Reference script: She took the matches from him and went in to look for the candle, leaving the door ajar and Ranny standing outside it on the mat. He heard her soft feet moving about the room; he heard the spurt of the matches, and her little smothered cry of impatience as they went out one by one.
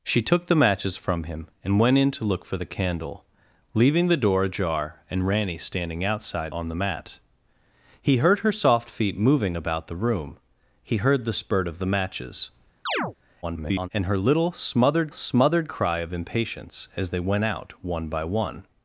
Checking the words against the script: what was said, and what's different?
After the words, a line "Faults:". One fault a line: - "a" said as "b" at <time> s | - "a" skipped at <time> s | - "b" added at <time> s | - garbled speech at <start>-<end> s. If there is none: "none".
She took the matches from him and went in to look for the candle, leaving the door ajar and Ranny standing outside on the mat. He heard her soft feet moving about the room; he heard the spurt of the matches, [garbled] and her little smothered smothered cry of impatience as they went out one by one.
Faults:
- "it" skipped at 6.5 s
- garbled speech at 13.4-13.9 s
- "smothered" added at 15.1 s